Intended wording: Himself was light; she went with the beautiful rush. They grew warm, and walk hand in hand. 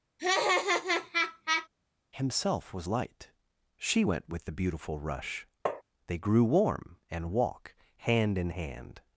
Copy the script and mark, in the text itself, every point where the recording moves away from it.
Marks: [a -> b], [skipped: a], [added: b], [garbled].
Himself was light; she went with the beautiful rush. They grew warm, and walk hand in hand.